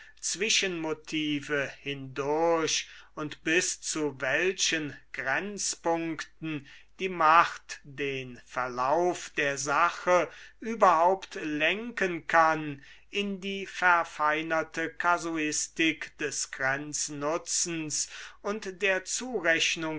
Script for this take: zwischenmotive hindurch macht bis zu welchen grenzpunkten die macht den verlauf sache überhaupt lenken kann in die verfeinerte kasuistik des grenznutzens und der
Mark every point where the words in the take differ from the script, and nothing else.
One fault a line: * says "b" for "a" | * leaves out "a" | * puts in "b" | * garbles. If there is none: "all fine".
* says "und" for "macht"
* puts in "der"